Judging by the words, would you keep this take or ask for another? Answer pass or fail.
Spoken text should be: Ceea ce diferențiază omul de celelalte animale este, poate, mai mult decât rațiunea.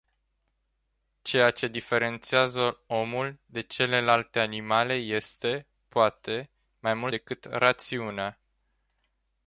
pass